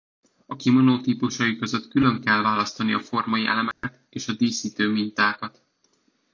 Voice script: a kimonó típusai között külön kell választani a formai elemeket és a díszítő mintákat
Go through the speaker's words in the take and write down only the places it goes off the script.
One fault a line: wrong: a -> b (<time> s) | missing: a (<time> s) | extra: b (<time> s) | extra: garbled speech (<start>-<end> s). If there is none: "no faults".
no faults